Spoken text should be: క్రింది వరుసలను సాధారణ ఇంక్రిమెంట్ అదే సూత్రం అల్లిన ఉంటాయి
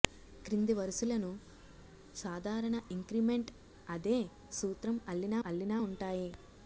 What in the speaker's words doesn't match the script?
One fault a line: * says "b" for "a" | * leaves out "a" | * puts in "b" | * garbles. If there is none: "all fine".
* puts in "అల్లిన"